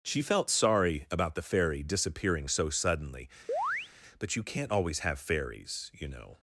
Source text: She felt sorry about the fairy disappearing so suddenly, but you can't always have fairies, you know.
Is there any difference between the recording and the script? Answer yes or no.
no